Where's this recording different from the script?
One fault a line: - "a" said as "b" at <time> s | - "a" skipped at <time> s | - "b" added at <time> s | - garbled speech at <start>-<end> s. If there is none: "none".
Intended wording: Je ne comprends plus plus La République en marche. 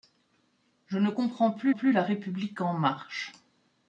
none